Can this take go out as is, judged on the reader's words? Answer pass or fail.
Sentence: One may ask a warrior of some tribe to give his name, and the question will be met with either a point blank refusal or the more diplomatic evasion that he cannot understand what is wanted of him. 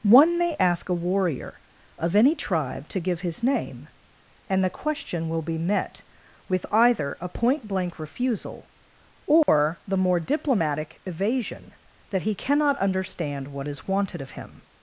fail